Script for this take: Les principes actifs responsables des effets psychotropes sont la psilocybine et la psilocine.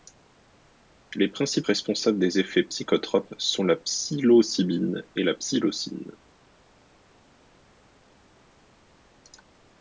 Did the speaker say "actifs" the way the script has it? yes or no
no